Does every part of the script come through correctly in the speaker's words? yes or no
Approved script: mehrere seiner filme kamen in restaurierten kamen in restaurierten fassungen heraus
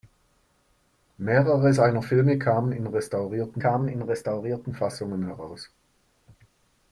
yes